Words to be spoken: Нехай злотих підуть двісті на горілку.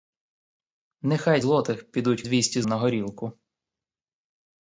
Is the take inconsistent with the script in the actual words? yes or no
no